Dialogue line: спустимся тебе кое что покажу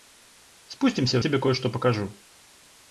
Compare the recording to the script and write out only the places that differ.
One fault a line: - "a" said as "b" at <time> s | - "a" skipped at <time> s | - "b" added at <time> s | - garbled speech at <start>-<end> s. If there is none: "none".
none